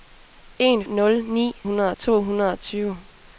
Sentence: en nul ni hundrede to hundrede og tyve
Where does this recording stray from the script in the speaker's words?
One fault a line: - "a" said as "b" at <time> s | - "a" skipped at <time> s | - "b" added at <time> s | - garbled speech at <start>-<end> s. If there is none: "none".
none